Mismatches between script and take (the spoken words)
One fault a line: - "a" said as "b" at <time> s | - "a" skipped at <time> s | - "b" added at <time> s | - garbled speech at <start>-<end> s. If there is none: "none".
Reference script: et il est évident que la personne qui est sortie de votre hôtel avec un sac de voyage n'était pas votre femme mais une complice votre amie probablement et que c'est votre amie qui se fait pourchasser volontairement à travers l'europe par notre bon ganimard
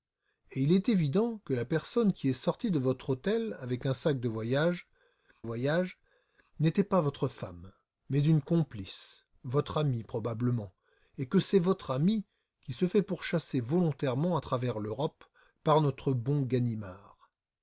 - "voyage" added at 5.4 s